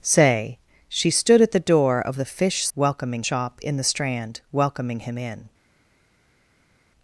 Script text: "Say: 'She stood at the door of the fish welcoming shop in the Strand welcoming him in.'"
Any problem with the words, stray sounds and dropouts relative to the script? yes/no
no